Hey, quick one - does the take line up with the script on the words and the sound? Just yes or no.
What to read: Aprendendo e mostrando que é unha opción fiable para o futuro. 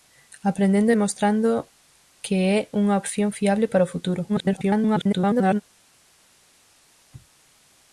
no